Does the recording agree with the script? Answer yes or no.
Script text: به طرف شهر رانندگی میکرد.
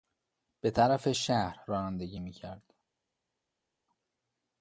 yes